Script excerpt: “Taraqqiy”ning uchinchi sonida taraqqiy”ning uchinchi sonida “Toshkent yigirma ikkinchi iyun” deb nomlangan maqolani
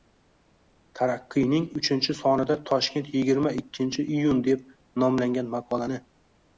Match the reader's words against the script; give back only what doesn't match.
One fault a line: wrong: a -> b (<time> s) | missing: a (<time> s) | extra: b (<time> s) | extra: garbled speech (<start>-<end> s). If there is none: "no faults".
missing: taraqqiy”ning uchinchi sonida (2.6 s)